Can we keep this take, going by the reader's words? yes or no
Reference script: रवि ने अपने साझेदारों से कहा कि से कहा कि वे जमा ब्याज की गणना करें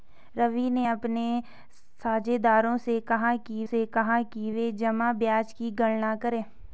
yes